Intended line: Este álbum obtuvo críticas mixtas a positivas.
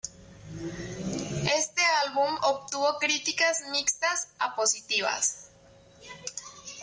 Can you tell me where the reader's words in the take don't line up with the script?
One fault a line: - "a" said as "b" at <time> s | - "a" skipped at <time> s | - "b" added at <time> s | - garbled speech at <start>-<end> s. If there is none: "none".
none